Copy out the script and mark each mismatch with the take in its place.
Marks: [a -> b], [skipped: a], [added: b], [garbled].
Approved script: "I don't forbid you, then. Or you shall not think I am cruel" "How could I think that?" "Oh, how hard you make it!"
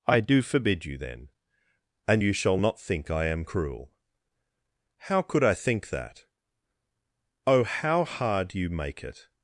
"I [don't -> do] forbid you, then. [Or -> And] you shall not think I am cruel" "How could I think that?" "Oh, how hard you make it!"